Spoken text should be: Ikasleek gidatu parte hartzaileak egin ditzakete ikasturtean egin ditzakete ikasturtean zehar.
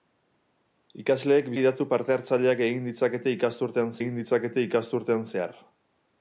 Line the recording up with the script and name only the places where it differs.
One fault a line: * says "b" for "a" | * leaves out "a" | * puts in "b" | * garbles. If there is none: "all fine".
all fine